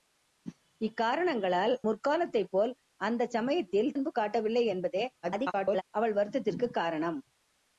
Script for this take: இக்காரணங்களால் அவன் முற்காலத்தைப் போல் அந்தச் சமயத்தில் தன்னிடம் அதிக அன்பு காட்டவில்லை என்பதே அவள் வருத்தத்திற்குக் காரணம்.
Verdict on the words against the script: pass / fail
fail